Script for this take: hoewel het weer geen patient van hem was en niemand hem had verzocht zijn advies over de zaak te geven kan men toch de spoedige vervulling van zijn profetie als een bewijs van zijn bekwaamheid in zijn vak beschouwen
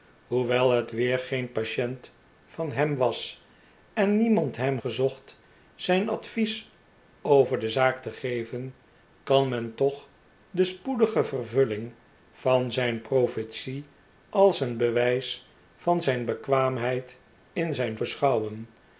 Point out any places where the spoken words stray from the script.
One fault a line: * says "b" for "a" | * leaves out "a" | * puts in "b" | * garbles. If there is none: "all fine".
* leaves out "had"
* leaves out "vak"